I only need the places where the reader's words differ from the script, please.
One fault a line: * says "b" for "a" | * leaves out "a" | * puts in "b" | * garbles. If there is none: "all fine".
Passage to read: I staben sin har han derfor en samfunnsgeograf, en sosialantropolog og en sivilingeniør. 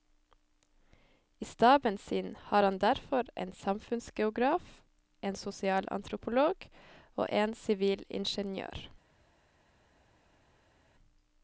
all fine